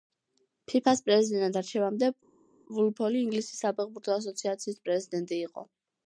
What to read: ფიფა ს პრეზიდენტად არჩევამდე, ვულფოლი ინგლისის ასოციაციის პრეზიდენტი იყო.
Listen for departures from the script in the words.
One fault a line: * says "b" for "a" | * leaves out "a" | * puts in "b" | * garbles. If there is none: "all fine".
* puts in "საფეხბურთო"